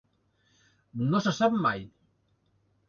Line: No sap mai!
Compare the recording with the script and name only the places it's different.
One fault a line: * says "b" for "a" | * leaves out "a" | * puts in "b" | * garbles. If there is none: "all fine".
* puts in "se"